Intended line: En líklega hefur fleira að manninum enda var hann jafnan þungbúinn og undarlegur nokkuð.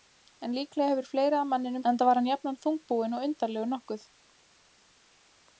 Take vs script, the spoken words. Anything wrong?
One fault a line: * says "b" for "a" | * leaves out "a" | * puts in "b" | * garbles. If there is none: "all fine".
all fine